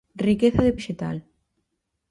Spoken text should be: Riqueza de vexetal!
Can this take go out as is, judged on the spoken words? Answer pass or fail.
pass